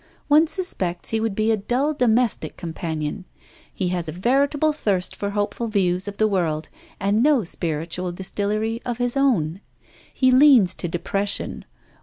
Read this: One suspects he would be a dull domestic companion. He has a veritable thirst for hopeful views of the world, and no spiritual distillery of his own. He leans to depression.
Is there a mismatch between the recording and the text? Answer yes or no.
no